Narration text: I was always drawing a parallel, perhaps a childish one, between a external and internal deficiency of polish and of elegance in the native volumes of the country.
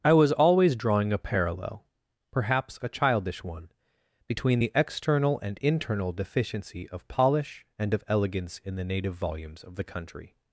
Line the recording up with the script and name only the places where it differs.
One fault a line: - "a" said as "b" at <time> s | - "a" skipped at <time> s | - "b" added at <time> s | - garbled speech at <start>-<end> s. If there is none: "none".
- "a" said as "the" at 4.6 s